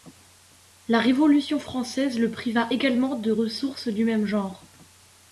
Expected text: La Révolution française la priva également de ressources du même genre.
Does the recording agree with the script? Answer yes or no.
no